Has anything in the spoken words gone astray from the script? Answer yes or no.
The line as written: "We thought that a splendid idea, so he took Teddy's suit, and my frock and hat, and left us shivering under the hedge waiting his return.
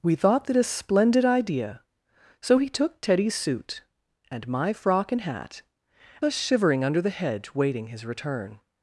yes